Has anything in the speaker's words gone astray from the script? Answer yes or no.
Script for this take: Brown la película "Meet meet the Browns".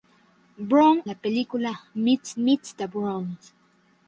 no